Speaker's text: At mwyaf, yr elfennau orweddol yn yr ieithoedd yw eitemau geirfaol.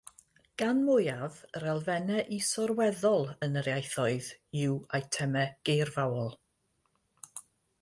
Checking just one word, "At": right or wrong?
wrong